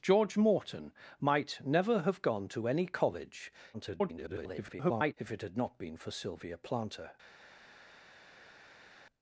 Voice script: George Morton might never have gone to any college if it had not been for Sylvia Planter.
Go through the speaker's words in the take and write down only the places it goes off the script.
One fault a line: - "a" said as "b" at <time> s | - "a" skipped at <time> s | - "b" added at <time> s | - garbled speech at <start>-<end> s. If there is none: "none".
- garbled speech at 3.7-5.1 s